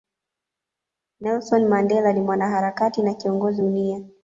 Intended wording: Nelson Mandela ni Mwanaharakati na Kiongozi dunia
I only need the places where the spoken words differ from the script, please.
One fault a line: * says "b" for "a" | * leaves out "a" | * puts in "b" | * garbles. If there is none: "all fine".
all fine